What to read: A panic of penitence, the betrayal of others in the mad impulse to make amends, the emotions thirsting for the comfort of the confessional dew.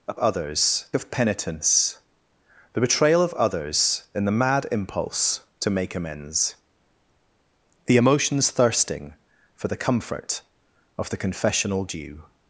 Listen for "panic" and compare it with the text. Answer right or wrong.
wrong